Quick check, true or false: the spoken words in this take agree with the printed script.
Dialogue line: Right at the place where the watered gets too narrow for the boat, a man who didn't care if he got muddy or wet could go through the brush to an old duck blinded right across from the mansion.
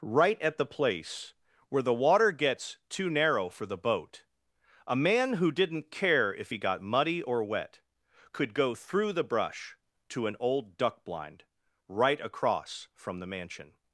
false